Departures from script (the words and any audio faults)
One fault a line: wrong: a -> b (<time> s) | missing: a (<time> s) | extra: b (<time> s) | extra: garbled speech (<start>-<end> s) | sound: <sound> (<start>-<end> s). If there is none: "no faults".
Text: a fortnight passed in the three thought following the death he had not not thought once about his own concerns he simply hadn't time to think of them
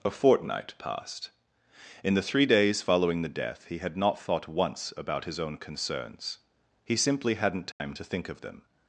wrong: thought -> days (2.5 s)
missing: not (4.2 s)
sound: dropout (7.7-7.8 s)